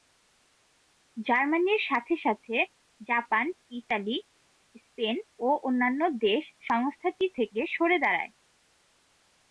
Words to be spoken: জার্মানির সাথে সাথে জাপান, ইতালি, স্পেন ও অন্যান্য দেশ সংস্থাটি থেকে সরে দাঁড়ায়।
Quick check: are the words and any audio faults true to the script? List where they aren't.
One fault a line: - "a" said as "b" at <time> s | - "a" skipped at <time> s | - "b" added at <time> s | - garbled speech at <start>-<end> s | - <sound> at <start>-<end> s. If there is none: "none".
none